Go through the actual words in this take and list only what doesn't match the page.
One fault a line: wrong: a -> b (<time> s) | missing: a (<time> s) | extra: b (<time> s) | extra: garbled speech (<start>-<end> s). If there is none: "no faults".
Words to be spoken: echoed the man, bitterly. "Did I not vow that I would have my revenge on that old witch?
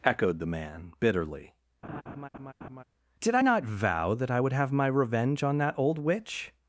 no faults